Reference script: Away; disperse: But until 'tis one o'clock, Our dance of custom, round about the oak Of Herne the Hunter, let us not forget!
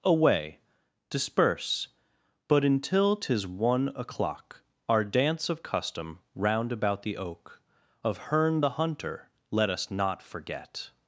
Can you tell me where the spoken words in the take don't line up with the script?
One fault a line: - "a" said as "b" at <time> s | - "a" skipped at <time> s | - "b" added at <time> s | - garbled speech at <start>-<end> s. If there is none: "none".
none